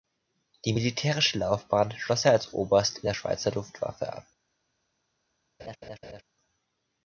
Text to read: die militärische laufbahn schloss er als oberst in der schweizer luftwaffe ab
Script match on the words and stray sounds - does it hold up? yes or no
no